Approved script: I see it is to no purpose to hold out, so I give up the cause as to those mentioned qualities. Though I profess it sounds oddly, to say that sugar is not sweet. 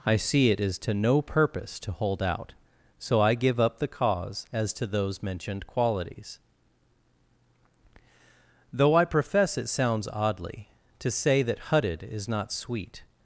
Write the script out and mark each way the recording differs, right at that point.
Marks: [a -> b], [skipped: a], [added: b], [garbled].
I see it is to no purpose to hold out, so I give up the cause as to those mentioned qualities. Though I profess it sounds oddly, to say that [sugar -> hutted] is not sweet.